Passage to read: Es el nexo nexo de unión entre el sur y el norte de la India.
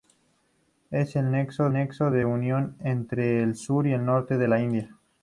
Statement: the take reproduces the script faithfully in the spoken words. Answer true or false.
true